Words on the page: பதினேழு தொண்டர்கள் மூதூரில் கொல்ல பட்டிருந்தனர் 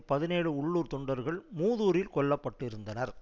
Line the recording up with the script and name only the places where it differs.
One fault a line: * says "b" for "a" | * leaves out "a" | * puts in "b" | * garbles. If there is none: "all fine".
* puts in "உள்ளூர்"